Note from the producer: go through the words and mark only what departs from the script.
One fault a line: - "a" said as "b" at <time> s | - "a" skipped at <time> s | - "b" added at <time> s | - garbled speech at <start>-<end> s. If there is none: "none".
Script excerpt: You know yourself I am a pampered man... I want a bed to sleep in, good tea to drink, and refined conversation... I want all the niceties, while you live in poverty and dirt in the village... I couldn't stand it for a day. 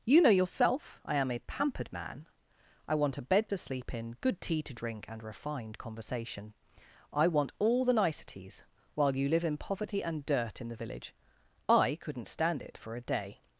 none